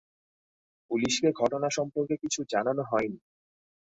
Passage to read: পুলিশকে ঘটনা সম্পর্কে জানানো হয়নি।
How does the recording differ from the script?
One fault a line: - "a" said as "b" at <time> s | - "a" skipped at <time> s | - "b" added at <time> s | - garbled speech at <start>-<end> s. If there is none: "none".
- "কিছু" added at 2.2 s